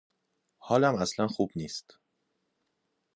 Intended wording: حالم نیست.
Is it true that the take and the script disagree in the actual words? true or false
true